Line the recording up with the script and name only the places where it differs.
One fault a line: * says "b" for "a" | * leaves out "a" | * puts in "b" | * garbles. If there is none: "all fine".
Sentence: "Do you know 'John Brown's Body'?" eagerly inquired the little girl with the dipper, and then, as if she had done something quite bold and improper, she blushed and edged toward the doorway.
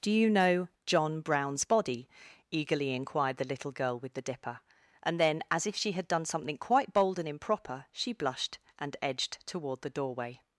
all fine